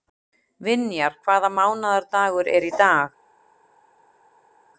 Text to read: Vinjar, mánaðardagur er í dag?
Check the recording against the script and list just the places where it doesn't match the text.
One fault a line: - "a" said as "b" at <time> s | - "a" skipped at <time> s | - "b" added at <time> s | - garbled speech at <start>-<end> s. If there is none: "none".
- "hvaða" added at 1.3 s